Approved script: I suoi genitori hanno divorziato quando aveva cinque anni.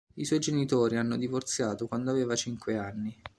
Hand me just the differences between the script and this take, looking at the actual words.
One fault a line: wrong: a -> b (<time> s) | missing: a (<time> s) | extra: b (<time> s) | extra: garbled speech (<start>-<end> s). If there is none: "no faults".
no faults